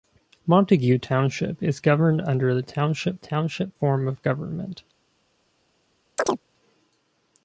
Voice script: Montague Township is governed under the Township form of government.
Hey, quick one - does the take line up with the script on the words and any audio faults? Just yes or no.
no